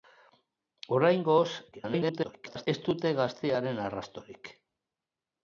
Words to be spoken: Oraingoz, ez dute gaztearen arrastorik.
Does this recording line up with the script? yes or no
no